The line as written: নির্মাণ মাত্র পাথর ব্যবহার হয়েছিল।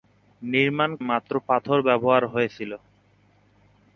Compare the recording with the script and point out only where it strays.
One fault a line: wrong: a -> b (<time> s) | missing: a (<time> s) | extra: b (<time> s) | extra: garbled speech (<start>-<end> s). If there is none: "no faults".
no faults